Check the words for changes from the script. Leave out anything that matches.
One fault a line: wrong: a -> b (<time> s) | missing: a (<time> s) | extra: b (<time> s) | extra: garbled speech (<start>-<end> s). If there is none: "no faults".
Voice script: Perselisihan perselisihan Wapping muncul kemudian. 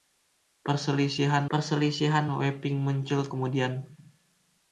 no faults